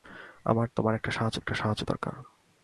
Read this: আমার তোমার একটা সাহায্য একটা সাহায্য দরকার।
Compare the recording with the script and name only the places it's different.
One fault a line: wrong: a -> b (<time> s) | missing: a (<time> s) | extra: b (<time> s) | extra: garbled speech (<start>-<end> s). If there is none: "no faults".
no faults